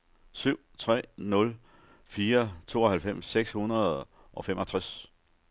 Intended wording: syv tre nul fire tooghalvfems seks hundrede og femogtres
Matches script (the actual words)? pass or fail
pass